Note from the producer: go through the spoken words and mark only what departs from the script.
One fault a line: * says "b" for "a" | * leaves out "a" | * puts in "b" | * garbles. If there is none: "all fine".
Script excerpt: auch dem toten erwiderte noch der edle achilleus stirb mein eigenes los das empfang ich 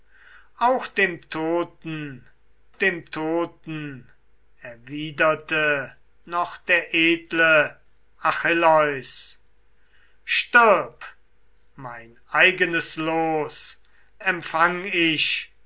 * puts in "dem toten"
* leaves out "das"